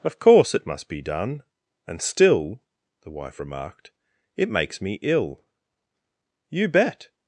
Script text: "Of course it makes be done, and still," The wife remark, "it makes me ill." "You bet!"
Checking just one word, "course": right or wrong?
right